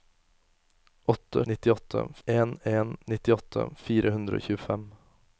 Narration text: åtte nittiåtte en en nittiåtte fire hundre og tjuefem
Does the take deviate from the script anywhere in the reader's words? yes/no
no